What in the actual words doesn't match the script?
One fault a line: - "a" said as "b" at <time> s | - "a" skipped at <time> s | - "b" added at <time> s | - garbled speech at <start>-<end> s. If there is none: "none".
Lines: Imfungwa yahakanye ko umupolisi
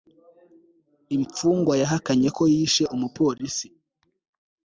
- "yishe" added at 2.5 s